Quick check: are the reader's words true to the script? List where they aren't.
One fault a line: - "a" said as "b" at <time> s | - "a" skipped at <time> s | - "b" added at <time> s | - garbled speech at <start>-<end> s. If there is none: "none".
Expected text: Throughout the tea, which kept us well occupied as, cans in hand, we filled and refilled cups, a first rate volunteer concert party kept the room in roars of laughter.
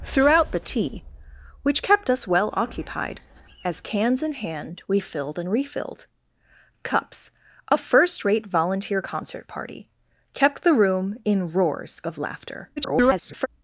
- garbled speech at 12.8-13.5 s